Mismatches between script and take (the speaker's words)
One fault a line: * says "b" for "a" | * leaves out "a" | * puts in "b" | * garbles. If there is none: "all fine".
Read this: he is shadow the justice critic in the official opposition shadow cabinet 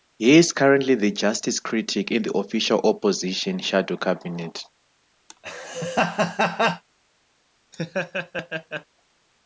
* says "currently" for "shadow"